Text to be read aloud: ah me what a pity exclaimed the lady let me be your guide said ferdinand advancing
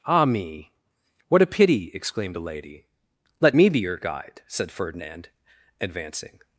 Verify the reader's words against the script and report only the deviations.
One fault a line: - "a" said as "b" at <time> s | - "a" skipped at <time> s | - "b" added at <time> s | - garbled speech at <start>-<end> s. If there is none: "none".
- "the" said as "a" at 2.3 s